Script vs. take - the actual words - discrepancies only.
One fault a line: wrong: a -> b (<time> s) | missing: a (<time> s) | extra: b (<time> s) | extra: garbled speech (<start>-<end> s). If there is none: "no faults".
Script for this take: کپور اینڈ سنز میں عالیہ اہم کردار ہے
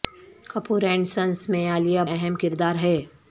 no faults